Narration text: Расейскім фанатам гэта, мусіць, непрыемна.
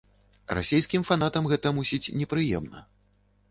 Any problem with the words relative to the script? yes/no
no